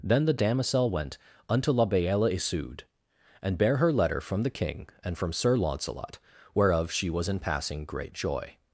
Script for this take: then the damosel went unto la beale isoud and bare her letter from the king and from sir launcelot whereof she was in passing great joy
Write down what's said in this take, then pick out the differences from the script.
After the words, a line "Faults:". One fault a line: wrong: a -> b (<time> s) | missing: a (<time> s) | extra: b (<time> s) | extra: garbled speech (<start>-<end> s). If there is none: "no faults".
then the damosel went unto la beale isoud and bare her letter from the king and from sir launcelot whereof she was in passing great joy
Faults:
no faults